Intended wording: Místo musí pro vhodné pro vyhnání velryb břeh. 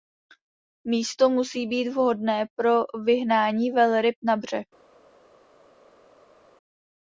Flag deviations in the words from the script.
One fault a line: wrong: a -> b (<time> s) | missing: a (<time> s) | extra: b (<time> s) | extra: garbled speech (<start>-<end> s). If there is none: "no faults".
wrong: pro -> být (1.7 s)
extra: na (4.2 s)